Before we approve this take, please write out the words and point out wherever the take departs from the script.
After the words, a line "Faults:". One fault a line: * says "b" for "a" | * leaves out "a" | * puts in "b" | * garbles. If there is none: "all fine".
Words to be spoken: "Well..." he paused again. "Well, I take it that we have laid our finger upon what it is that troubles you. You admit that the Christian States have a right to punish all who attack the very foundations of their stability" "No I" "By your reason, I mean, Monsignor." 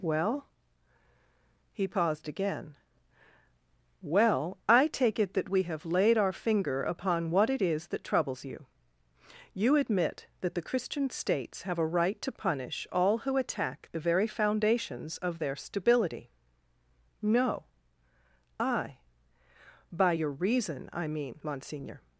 "Well..." he paused again. "Well, I take it that we have laid our finger upon what it is that troubles you. You admit that the Christian States have a right to punish all who attack the very foundations of their stability" "No I" "By your reason, I mean, Monsignor."
Faults:
all fine